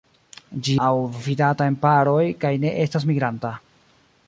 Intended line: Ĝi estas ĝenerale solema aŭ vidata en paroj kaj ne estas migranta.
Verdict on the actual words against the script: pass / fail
fail